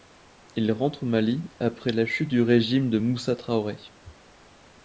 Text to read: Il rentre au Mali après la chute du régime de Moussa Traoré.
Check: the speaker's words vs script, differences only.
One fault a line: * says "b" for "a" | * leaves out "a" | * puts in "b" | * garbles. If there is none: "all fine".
all fine